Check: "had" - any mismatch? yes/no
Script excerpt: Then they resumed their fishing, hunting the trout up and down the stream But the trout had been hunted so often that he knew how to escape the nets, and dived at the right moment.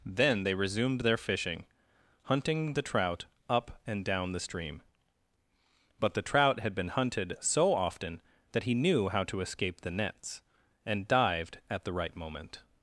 no